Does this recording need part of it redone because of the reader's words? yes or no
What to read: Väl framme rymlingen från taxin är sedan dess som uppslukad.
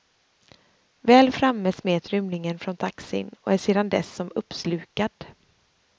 yes